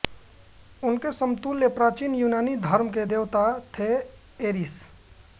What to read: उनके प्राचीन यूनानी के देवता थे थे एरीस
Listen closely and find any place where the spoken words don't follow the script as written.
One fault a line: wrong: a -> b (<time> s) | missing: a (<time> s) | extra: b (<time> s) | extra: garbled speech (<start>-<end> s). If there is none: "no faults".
extra: समतुल्य (1.1 s)
extra: धर्म (2.6 s)
missing: थे (3.9 s)